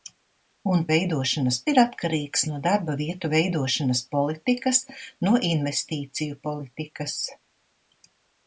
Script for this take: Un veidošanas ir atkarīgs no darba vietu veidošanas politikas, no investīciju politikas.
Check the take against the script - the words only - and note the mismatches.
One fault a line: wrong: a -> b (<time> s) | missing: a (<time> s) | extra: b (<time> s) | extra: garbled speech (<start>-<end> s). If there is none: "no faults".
no faults